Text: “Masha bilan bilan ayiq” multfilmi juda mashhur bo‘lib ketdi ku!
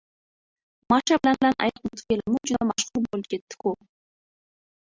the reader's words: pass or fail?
pass